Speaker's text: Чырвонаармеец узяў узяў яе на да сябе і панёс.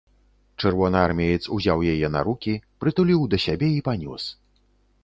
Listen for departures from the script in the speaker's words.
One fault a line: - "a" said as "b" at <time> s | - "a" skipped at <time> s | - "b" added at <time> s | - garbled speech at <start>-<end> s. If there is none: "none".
- "узяў" skipped at 1.9 s
- "рукі прытуліў" added at 2.3 s